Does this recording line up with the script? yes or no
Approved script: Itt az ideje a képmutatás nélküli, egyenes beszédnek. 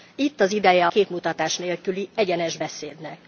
no